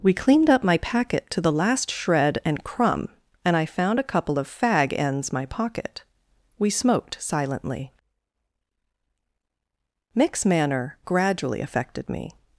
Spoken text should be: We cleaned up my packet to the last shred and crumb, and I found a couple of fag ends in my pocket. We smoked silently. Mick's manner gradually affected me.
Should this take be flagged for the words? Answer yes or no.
yes